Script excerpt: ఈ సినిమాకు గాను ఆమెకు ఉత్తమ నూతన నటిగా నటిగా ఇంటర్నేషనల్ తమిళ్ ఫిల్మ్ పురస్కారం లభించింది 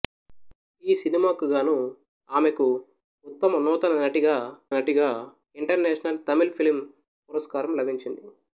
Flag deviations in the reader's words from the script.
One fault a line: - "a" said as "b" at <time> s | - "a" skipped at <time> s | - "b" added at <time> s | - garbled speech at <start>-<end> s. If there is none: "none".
none